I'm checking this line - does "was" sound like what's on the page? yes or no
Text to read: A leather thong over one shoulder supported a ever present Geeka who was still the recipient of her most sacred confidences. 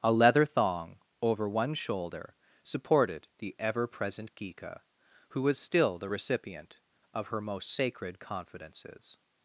yes